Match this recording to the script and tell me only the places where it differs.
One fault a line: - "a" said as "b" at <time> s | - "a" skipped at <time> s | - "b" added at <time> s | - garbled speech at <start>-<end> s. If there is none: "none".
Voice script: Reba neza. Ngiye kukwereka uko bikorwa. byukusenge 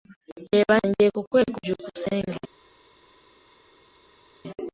- "neza" skipped at 0.8 s
- "uko bikorwa" skipped at 1.6 s